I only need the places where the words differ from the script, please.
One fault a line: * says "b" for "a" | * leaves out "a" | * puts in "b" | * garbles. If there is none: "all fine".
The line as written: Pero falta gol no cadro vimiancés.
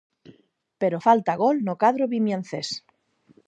all fine